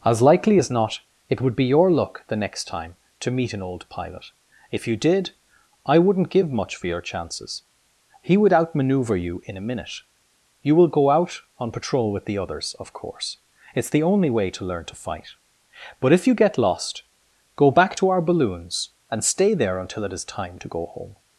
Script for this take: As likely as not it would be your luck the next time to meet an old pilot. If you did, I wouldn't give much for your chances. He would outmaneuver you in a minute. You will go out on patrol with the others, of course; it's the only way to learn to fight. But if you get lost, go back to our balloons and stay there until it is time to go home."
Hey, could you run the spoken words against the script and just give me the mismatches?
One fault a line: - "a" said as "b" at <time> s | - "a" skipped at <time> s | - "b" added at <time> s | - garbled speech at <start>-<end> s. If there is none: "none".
none